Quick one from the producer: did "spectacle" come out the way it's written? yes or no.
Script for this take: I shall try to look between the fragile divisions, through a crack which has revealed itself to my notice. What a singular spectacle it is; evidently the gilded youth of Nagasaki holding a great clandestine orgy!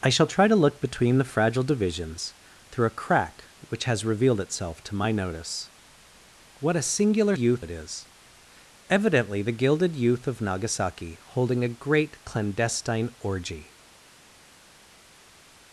no